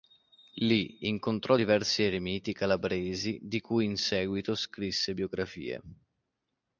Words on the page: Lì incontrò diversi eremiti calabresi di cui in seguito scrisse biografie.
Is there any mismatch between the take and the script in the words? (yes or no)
no